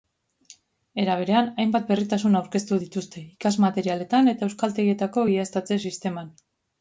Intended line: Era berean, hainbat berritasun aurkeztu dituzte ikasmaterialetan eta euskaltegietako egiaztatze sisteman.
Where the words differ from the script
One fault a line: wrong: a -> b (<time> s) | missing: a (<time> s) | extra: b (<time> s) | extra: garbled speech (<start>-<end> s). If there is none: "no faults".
no faults